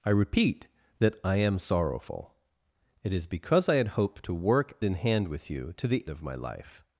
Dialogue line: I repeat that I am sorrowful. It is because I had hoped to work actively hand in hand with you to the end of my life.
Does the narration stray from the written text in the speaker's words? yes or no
yes